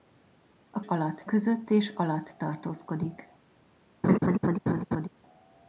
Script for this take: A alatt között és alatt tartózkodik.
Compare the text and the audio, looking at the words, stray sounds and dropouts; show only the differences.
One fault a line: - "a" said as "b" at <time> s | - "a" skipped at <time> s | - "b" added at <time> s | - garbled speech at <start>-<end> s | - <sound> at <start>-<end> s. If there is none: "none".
- laugh at 4.0-5.1 s